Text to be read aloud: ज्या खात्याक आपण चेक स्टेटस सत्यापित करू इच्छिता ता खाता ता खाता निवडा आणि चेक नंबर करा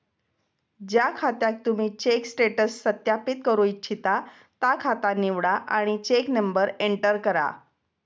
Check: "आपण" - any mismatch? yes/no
yes